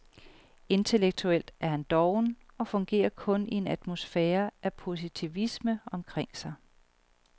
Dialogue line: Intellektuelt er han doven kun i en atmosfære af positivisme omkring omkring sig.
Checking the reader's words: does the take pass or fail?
fail